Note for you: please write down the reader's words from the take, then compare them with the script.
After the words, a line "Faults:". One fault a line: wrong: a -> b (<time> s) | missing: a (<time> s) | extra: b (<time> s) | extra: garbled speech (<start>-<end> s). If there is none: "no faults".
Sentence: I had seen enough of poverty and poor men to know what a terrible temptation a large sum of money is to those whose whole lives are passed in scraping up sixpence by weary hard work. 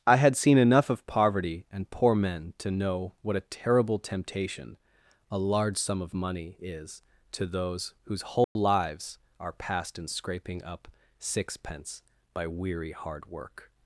I had seen enough of poverty and poor men to know what a terrible temptation a large sum of money is to those whose whole lives are passed in scraping up sixpence by weary hard work.
Faults:
no faults